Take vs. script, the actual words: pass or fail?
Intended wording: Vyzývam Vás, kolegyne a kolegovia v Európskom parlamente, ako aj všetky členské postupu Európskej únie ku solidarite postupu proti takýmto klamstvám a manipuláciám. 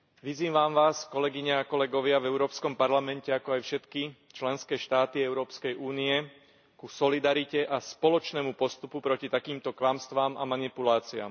fail